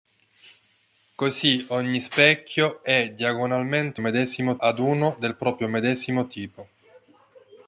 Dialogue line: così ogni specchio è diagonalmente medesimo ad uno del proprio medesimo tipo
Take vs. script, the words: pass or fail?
pass